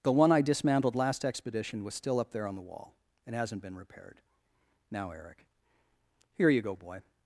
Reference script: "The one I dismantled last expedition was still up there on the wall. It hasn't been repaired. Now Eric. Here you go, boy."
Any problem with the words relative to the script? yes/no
no